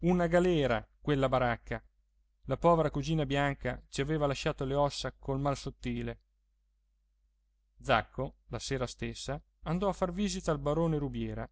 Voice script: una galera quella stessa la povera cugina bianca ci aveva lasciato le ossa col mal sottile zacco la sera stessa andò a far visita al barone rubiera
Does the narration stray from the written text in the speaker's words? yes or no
yes